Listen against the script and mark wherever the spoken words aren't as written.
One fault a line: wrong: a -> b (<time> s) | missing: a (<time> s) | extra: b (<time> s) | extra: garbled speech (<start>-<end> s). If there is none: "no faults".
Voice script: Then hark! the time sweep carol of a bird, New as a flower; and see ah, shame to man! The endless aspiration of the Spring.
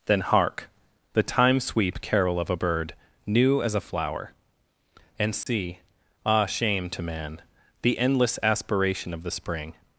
no faults